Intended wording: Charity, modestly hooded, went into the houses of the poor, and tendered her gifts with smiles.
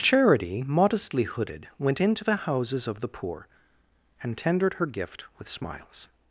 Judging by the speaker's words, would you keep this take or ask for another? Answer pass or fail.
fail